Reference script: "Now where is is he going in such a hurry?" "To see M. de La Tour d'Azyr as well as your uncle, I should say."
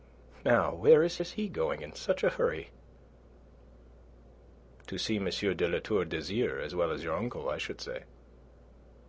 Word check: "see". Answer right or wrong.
right